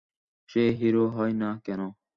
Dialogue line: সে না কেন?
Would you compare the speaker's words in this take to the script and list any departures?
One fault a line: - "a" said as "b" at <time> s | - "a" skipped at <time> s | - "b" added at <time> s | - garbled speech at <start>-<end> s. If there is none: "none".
- "হিরো হয়" added at 0.8 s